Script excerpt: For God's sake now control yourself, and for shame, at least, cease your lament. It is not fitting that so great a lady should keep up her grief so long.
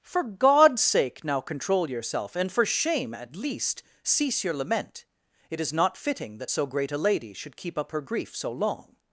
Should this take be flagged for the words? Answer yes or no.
no